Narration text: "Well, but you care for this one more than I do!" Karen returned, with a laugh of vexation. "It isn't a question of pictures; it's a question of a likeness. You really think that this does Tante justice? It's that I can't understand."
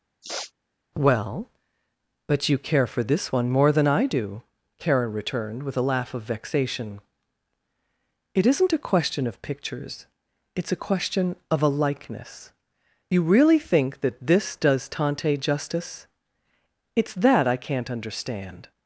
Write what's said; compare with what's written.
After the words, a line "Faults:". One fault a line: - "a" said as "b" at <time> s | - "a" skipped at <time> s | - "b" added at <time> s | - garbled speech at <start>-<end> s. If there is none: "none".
"Well, but you care for this one more than I do!" Karen returned, with a laugh of vexation. "It isn't a question of pictures; it's a question of a likeness. You really think that this does Tante justice? It's that I can't understand."
Faults:
none